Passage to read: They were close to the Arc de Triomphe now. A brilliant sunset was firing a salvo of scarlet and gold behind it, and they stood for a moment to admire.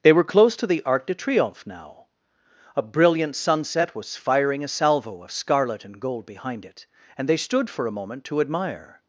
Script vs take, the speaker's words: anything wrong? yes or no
no